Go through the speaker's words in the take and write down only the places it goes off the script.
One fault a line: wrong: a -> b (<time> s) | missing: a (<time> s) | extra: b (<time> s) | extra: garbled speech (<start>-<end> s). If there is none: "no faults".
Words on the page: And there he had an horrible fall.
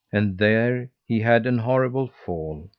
no faults